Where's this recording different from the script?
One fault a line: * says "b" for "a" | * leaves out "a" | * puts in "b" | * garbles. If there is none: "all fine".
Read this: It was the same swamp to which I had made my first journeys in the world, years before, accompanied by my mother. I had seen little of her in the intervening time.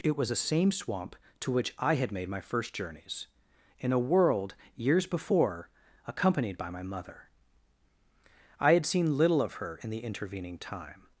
* says "a" for "the"